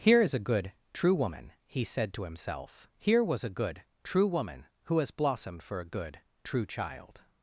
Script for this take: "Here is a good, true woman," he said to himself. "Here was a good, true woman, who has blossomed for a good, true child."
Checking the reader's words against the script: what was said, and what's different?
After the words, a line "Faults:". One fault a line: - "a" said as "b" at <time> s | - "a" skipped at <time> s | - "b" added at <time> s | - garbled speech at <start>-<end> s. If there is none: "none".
"Here is a good, true woman," he said to himself. "Here was a good, true woman, who has blossomed for a good, true child."
Faults:
none